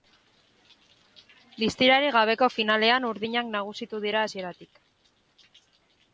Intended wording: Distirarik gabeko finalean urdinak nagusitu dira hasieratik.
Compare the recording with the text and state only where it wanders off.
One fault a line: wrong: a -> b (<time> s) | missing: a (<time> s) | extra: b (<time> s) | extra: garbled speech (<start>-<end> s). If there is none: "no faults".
no faults